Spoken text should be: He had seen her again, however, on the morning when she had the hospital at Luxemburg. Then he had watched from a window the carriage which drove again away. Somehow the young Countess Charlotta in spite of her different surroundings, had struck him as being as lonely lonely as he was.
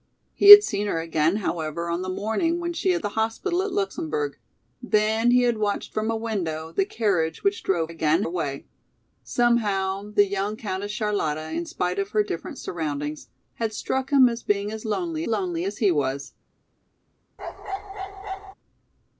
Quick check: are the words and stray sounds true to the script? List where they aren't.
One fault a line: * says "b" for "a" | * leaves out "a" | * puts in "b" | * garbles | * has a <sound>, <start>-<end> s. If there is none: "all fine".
* has a bark, 17.4-18.5 s